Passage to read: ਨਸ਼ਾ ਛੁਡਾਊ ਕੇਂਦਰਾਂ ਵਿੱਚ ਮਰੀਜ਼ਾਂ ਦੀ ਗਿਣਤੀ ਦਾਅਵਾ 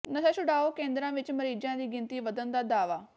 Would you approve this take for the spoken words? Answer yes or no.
no